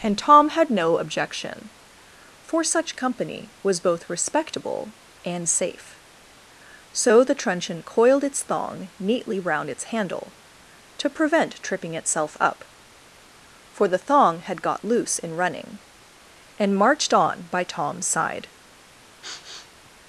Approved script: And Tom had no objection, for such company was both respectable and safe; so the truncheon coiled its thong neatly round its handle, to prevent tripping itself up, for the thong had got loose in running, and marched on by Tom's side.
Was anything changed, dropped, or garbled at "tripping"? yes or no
no